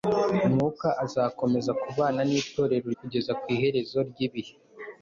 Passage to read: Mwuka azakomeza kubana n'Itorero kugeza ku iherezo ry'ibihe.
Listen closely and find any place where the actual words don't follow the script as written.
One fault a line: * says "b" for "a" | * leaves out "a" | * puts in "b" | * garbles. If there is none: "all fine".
all fine